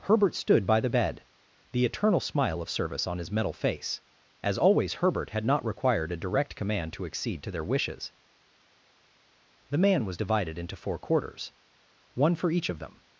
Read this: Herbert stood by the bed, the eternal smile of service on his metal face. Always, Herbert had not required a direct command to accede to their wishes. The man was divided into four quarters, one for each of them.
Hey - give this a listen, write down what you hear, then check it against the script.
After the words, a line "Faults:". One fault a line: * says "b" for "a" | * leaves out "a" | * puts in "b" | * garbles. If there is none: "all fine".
Herbert stood by the bed, the eternal smile of service on his metal face. As always, Herbert had not required a direct command to accede to their wishes. The man was divided into four quarters, one for each of them.
Faults:
* puts in "As"